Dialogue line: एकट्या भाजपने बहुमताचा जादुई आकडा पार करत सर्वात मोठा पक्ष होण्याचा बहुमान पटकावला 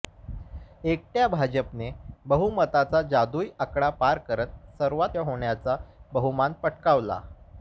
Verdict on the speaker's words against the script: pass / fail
fail